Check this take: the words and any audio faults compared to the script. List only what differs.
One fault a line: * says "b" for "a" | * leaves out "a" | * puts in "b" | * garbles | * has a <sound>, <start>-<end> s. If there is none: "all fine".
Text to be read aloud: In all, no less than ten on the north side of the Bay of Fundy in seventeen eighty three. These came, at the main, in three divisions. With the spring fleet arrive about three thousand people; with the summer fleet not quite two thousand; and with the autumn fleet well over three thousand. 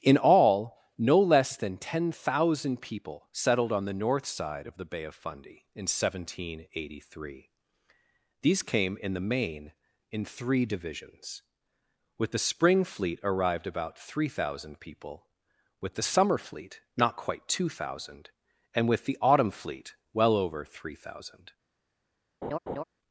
* puts in "thousand people settled"
* says "in" for "at"
* says "arrived" for "arrive"
* has a laugh, 22.4-22.8 s